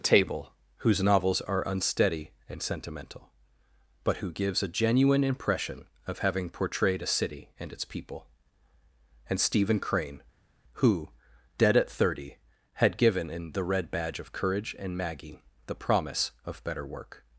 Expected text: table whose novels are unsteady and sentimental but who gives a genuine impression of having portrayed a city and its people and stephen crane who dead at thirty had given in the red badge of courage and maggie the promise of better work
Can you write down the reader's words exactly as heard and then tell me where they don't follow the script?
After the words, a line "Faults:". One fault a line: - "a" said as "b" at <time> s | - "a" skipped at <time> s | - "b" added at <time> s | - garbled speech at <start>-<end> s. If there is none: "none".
table whose novels are unsteady and sentimental but who gives a genuine impression of having portrayed a city and its people and stephen crane who dead at thirty had given in the red badge of courage and maggie the promise of better work
Faults:
none